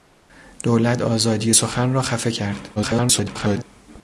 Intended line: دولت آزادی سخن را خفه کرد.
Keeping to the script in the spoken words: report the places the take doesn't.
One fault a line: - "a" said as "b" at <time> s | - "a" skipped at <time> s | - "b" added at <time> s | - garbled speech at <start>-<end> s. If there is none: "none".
- garbled speech at 2.8-3.6 s